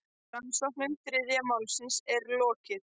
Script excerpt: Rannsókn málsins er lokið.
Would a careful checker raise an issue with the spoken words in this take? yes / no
yes